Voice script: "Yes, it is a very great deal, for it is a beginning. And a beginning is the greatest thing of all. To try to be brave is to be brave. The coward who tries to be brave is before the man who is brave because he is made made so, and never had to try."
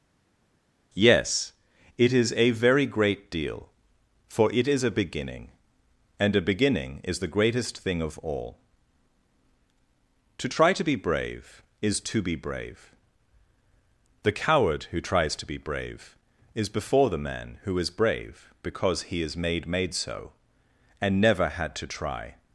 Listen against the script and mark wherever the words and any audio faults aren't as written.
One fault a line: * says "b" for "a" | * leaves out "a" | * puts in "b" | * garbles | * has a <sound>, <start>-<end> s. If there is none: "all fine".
all fine